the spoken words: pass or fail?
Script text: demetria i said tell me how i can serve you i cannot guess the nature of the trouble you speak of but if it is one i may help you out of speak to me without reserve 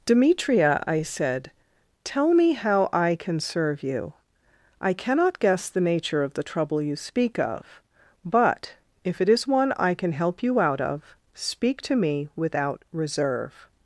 fail